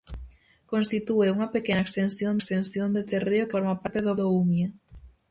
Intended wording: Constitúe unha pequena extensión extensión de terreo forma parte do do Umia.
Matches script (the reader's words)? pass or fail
pass